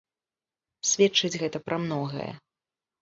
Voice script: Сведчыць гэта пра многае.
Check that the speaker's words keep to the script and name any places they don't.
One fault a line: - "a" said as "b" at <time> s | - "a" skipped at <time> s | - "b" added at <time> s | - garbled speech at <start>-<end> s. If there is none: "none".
none